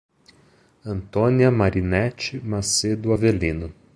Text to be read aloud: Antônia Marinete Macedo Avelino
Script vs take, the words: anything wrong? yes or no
no